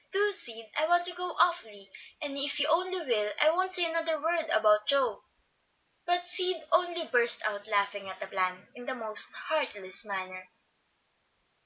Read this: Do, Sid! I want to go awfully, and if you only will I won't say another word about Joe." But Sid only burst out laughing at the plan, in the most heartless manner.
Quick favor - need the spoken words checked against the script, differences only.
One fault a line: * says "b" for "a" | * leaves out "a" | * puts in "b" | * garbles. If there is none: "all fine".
all fine